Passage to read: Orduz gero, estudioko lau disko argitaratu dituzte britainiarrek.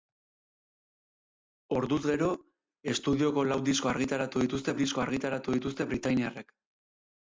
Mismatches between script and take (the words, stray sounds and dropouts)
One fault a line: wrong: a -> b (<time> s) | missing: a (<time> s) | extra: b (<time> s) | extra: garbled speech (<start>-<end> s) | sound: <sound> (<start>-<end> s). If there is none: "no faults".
extra: disko argitaratu dituzte (4.8 s)